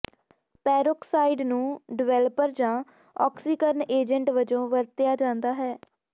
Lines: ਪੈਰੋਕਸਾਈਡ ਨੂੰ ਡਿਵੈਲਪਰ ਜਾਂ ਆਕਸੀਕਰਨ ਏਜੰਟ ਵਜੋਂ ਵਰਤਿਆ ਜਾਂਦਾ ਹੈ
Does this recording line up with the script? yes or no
yes